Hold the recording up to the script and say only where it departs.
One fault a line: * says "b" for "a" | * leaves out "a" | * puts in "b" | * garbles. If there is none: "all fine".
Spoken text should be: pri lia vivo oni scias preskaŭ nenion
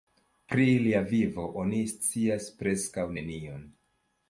all fine